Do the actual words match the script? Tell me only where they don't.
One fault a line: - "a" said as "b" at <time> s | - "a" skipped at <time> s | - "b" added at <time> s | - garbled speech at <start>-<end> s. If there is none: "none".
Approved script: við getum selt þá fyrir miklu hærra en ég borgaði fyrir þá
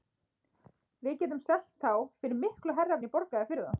none